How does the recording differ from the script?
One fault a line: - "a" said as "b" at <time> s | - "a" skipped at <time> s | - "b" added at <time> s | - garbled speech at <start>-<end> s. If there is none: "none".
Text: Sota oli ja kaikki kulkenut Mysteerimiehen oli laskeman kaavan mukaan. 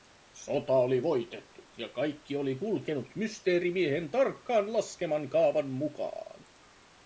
- "voitettu" added at 1.0 s
- "oli" added at 2.4 s
- "oli" said as "tarkkaan" at 4.1 s